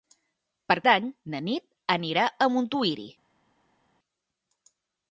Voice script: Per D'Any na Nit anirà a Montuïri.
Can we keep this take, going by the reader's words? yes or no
yes